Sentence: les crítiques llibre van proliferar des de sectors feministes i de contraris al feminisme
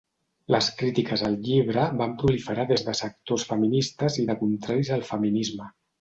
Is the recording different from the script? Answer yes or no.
yes